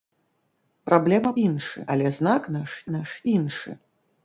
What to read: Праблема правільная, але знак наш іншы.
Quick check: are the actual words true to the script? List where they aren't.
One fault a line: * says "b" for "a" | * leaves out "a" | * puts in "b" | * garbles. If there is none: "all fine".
* says "іншы" for "правільная"
* puts in "наш"